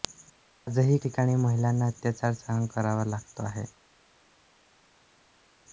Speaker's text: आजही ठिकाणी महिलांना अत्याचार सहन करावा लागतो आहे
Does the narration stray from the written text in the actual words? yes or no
no